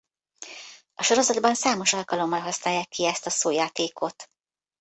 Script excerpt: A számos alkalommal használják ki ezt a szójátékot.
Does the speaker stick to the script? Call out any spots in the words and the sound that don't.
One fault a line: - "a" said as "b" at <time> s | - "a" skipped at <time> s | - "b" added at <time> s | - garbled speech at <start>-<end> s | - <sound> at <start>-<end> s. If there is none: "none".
- "sorozatban" added at 1.0 s